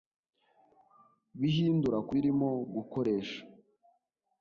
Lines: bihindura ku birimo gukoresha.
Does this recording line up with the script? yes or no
yes